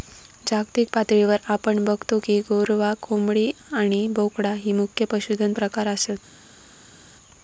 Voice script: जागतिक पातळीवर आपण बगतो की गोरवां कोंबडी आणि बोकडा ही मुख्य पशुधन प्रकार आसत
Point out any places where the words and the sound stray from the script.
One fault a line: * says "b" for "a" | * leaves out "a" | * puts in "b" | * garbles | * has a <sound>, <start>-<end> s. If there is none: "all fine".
all fine